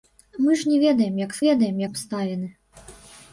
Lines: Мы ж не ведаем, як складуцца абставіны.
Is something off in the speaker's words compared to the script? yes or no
yes